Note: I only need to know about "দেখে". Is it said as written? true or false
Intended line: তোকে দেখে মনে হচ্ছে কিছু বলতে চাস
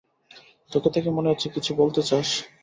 true